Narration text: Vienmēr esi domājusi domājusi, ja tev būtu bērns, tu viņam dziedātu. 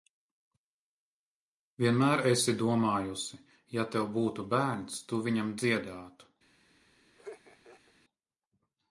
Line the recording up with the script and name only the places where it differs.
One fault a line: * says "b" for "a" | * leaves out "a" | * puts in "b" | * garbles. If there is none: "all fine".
* leaves out "domājusi"